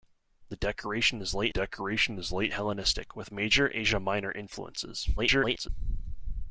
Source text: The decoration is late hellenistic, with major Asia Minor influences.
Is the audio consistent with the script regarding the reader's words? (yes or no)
no